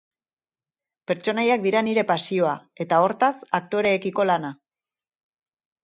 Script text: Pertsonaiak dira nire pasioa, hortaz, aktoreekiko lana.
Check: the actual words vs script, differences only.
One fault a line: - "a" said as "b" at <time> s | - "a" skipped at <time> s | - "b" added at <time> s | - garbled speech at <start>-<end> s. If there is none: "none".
- "eta" added at 2.9 s